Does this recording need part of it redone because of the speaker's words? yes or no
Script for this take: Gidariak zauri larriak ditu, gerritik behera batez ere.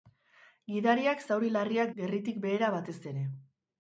yes